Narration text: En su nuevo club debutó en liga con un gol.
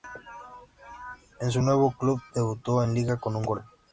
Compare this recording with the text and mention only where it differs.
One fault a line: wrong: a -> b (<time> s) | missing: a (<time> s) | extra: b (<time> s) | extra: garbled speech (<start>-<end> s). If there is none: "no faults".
no faults